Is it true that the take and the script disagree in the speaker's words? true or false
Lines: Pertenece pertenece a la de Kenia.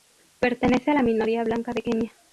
true